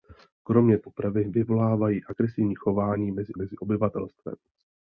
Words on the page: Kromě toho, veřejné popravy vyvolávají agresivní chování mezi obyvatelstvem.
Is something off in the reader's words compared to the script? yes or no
yes